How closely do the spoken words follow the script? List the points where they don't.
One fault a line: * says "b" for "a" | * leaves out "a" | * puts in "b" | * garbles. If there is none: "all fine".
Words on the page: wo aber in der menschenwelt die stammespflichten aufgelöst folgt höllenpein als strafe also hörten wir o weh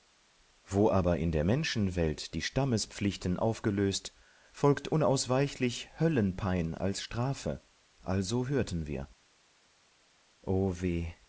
* puts in "unausweichlich"